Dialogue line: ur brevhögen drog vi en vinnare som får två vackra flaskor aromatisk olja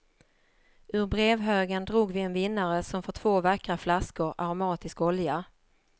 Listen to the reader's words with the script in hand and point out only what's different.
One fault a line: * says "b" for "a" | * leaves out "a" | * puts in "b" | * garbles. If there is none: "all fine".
all fine